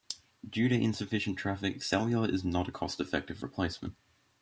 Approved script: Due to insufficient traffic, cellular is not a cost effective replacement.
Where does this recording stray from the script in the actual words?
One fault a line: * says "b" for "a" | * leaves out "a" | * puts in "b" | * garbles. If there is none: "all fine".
all fine